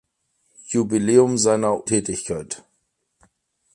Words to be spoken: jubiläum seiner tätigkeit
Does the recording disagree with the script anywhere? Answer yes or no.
no